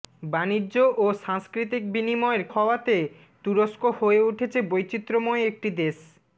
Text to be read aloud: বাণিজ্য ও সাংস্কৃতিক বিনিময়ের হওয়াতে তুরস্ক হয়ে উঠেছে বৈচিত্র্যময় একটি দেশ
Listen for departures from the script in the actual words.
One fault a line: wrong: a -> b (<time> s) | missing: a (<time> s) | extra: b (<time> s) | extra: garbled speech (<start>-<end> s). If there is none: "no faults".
no faults